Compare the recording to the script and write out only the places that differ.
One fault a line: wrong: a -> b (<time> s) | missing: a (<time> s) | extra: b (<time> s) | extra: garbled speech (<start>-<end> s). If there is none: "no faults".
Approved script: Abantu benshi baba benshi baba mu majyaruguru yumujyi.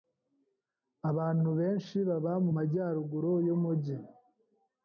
missing: benshi baba (2.3 s)